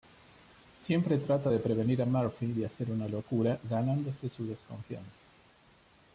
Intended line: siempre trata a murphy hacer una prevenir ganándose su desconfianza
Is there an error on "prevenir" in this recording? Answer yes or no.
yes